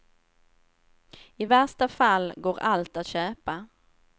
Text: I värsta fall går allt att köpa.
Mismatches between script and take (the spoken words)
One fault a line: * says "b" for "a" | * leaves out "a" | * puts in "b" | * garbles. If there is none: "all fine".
all fine